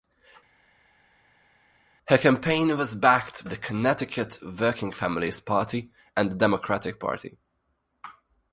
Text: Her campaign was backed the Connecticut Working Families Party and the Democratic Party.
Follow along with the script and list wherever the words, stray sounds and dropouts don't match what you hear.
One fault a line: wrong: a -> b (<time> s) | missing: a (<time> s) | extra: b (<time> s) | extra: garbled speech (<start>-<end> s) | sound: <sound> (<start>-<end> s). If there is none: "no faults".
no faults